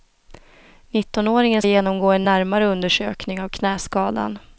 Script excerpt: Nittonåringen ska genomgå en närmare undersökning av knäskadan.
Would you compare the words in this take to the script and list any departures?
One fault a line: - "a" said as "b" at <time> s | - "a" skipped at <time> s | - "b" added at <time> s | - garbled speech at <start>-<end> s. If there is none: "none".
- "ska" skipped at 1.6 s